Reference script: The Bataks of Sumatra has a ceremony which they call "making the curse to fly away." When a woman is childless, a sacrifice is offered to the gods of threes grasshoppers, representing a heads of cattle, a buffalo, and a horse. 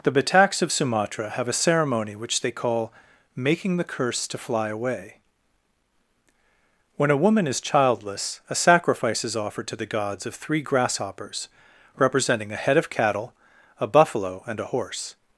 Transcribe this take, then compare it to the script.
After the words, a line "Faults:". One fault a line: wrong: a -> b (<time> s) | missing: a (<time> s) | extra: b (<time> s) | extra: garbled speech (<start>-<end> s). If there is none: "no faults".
The Bataks of Sumatra have a ceremony which they call "making the curse to fly away." When a woman is childless, a sacrifice is offered to the gods of three grasshoppers, representing a head of cattle, a buffalo, and a horse.
Faults:
wrong: has -> have (1.3 s)
wrong: threes -> three (10.3 s)
wrong: heads -> head (12.6 s)